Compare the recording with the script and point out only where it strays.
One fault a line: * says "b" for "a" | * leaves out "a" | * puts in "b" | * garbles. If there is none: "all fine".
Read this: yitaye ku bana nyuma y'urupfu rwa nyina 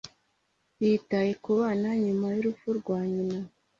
all fine